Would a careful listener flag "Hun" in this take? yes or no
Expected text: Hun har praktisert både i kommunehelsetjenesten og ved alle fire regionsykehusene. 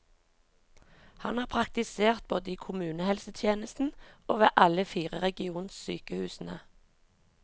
yes